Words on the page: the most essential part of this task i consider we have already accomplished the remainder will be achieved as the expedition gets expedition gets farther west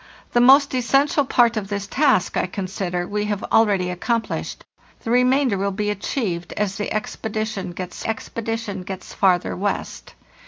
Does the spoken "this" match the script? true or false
true